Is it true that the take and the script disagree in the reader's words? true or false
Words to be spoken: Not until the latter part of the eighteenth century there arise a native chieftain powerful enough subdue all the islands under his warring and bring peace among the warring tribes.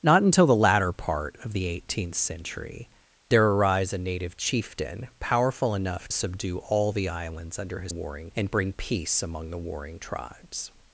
false